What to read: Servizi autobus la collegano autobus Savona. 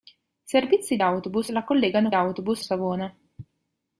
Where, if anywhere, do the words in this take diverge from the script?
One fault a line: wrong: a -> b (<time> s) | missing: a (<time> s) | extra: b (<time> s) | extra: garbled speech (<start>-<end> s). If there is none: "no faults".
no faults